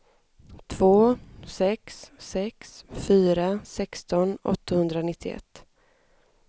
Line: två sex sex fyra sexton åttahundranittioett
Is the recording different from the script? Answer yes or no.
no